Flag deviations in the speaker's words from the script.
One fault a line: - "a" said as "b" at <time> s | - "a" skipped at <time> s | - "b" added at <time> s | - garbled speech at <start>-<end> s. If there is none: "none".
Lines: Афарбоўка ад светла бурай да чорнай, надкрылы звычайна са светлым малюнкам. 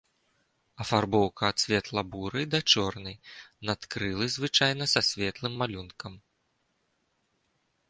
none